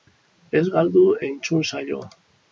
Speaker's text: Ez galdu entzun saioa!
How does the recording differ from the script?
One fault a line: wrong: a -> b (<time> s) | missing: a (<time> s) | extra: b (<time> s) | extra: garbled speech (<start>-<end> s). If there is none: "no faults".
no faults